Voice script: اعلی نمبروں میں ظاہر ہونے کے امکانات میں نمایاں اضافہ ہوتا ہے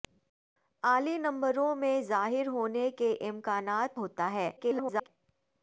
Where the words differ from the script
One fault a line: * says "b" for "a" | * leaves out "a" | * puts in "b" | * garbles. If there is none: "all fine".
* leaves out "میں نمایاں اضافہ"
* garbles